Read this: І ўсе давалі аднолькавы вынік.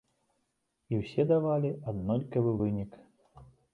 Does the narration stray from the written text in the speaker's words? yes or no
no